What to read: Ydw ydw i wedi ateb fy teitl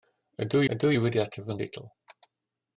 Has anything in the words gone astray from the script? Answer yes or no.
no